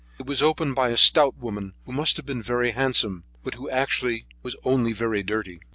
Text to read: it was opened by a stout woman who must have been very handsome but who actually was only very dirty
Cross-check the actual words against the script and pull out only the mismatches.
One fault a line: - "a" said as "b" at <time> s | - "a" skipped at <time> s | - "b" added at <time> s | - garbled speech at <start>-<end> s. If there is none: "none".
none